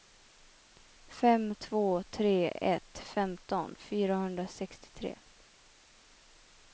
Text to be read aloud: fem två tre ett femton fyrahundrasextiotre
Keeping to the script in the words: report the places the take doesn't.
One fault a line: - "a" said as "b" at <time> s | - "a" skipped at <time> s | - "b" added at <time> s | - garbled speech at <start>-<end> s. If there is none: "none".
none